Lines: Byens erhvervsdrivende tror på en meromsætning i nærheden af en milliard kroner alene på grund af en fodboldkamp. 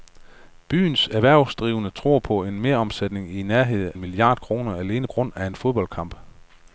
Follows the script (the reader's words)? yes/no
no